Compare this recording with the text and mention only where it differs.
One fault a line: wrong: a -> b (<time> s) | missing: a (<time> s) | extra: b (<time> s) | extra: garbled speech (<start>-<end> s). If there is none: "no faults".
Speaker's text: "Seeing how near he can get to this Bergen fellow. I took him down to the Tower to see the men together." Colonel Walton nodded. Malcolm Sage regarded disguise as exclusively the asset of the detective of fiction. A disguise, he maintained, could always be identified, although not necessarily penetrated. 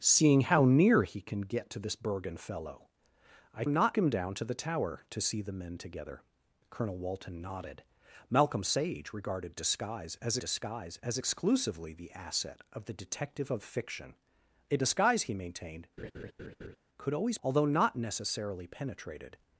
wrong: took -> not (3.7 s)
extra: disguise as (10.4 s)
missing: be identified (17.4 s)